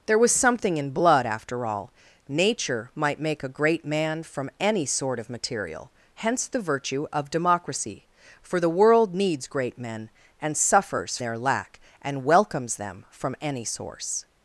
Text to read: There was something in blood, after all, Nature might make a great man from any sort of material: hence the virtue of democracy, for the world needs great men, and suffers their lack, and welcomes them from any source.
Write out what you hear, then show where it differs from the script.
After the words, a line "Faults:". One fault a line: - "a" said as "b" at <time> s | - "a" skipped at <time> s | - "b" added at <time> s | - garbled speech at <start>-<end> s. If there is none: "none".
There was something in blood, after all, Nature might make a great man from any sort of material: hence the virtue of democracy, for the world needs great men, and suffers their lack, and welcomes them from any source.
Faults:
none